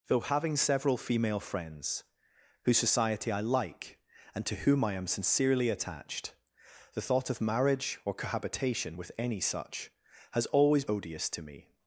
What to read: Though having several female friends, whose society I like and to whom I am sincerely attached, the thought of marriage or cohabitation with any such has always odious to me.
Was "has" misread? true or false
false